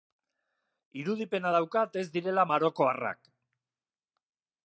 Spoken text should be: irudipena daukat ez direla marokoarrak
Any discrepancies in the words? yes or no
no